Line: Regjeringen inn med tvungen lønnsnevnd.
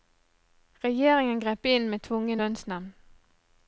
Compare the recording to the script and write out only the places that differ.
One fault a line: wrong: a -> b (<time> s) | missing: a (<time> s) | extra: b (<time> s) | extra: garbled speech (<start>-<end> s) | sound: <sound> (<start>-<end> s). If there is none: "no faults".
extra: grep (1.4 s)